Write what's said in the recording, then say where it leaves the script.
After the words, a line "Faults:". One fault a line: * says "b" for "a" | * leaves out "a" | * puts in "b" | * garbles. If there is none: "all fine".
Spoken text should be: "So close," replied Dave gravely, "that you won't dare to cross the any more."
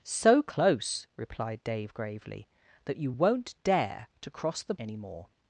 "So close," replied Dave gravely, "that you won't dare to cross the any more."
Faults:
all fine